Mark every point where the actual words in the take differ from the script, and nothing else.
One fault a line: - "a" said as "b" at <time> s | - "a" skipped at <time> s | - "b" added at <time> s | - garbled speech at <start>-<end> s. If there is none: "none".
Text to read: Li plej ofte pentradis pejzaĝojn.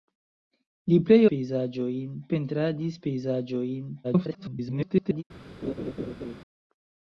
- "ofte" said as "pejzaĝojn" at 1.3 s
- garbled speech at 4.0-5.2 s